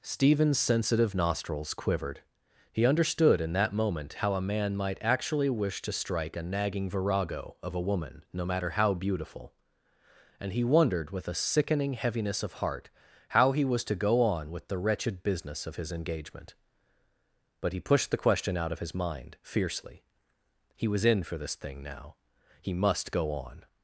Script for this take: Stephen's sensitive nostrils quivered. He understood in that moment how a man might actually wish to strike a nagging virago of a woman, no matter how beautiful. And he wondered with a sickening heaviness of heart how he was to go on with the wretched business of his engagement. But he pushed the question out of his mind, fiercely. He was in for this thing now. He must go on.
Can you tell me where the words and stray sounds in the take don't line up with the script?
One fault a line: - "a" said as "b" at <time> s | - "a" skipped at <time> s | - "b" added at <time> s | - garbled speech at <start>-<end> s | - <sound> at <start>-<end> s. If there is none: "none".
none